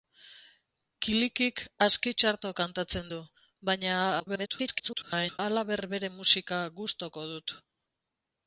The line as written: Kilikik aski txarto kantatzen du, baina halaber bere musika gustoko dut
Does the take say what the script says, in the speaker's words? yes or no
no